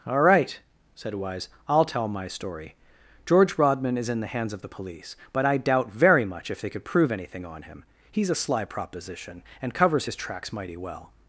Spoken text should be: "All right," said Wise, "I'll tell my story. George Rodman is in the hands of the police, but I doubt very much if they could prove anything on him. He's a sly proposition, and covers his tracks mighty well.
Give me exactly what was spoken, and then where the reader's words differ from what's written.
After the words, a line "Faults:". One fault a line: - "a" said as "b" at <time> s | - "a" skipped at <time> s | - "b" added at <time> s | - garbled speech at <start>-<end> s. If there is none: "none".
"All right," said Wise, "I'll tell my story. George Rodman is in the hands of the police, but I doubt very much if they could prove anything on him. He's a sly proposition, and covers his tracks mighty well.
Faults:
none